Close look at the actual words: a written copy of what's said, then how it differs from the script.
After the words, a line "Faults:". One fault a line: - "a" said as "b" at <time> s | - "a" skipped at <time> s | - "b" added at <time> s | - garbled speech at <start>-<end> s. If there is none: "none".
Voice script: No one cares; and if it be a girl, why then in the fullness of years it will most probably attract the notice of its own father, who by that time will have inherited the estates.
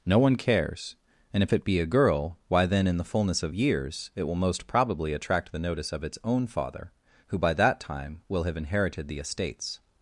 No one cares; and if it be a girl, why then in the fullness of years it will most probably attract the notice of its own father, who by that time will have inherited the estates.
Faults:
none